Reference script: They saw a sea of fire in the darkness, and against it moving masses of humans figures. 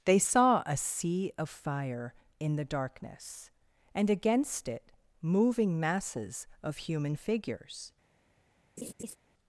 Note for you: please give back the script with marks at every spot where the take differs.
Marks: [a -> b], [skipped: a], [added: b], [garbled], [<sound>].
They saw a sea of fire in the darkness, and against it moving masses of [humans -> human] figures. [laugh]